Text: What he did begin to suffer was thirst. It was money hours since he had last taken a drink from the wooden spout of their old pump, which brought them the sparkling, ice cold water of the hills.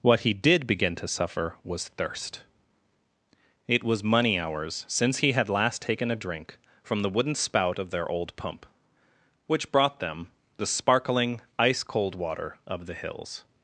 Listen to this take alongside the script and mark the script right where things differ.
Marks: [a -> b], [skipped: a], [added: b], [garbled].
What he did begin to suffer was thirst. It was money hours since he had last taken a drink from the wooden spout of their old pump, which brought them the sparkling, ice cold water of the hills.